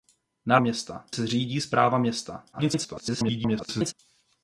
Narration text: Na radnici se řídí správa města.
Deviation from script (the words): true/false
true